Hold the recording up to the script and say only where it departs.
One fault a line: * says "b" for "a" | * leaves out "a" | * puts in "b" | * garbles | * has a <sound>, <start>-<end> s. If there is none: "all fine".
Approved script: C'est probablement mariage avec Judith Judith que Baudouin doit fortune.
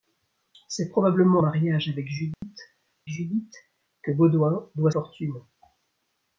* has a dropout, 2.3-2.4 s